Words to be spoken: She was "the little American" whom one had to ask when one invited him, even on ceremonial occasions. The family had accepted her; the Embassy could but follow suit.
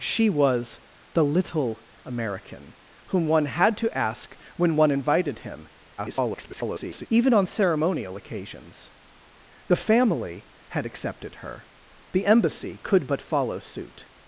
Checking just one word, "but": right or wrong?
right